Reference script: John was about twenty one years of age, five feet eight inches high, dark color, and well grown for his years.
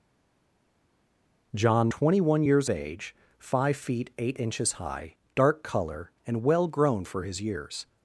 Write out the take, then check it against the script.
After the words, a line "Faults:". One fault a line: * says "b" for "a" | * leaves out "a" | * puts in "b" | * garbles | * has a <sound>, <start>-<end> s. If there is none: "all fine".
John twenty one years age, five feet eight inches high, dark color, and well grown for his years.
Faults:
* leaves out "was about"
* leaves out "of"